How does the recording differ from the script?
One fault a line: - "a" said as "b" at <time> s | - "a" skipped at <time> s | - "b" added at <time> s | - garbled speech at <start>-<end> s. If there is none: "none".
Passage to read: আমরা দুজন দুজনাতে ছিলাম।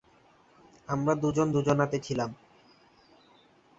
none